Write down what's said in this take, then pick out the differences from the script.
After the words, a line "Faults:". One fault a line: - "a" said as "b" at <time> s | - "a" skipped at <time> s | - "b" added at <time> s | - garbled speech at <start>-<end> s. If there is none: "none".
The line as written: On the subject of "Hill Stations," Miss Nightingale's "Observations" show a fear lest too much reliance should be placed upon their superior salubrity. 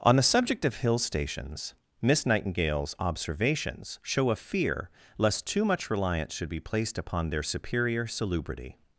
On the subject of "Hill Stations," Miss Nightingale's "Observations" show a fear lest too much reliance should be placed upon their superior salubrity.
Faults:
none